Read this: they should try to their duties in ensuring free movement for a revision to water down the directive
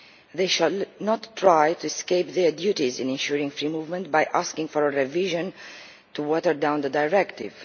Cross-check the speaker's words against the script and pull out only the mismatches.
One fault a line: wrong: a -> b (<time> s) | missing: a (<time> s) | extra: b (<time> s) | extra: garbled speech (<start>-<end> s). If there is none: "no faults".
extra: not (1.0 s)
extra: escape (1.8 s)
extra: by asking (4.1 s)